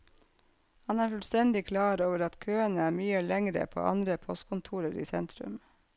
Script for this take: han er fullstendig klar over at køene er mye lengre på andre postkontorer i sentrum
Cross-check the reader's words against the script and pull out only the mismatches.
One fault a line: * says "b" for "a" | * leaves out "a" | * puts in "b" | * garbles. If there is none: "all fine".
all fine